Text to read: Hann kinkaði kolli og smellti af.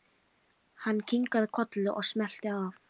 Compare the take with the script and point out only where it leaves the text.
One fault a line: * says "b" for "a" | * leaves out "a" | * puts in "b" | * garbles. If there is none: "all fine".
all fine